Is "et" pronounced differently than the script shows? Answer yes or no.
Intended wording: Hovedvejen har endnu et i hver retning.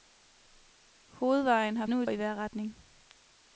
no